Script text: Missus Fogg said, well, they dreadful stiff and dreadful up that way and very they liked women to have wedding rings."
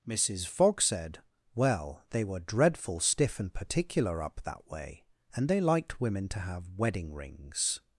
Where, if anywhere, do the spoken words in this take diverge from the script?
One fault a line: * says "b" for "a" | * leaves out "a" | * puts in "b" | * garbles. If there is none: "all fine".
* puts in "were"
* says "particular" for "dreadful"
* leaves out "very"